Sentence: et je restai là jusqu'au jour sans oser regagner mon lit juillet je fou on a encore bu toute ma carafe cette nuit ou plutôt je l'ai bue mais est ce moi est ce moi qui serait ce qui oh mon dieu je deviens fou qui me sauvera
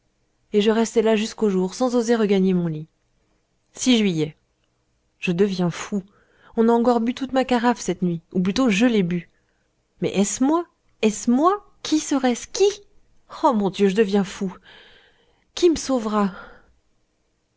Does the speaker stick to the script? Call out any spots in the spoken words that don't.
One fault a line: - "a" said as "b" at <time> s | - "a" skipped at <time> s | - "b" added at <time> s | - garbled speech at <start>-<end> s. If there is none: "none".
- "deviens" added at 5.3 s